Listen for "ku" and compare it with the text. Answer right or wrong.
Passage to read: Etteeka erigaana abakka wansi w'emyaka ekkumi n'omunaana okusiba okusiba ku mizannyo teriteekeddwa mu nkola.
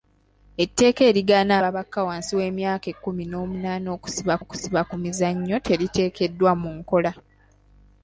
right